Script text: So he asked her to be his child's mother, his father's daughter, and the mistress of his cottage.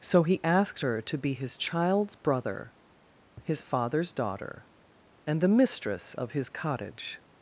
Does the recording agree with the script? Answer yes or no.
no